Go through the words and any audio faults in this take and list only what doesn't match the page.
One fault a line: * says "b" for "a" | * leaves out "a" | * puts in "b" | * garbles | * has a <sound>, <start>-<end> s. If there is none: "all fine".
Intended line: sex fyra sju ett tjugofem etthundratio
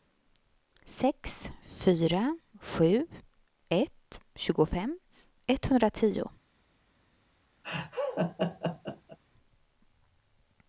* has a laugh, 7.6-9.2 s